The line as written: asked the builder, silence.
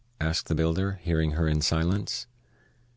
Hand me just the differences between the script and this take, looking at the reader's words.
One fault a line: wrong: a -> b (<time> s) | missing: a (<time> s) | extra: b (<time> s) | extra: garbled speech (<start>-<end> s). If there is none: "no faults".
extra: hearing her in (1.0 s)